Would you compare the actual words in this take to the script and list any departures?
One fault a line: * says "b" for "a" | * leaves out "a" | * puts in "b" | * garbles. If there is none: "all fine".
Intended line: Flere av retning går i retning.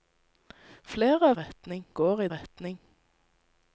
all fine